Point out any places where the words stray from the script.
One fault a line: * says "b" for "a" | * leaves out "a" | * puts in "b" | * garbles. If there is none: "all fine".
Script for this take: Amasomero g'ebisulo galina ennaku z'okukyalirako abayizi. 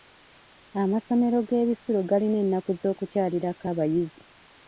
all fine